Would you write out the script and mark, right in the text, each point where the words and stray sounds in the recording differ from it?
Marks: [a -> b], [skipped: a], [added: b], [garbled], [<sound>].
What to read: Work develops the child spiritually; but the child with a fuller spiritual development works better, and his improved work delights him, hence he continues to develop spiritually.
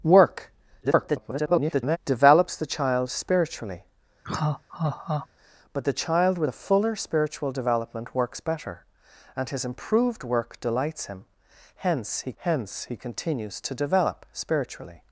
Work [garbled] develops the child spiritually; [laugh] but the child with a fuller spiritual development works better, and his improved work delights him, hence he [added: hence he] continues to develop spiritually.